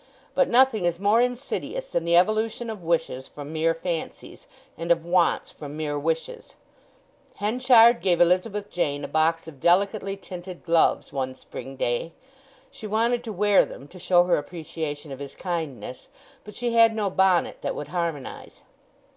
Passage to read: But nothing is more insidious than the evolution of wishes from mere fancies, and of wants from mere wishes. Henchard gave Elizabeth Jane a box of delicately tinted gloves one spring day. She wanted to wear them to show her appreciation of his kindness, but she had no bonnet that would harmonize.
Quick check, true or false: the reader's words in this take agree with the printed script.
true